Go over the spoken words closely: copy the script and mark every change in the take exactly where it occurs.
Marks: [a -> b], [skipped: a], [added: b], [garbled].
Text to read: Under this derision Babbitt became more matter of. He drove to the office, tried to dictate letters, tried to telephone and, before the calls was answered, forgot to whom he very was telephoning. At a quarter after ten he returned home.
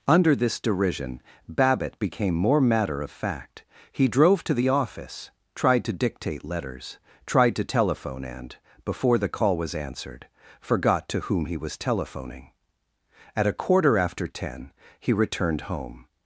Under this derision Babbitt became more matter of. [added: fact] He drove to the office, tried to dictate letters, tried to telephone and, before the [calls -> call] was answered, forgot to whom he [skipped: very] was telephoning. At a quarter after ten he returned home.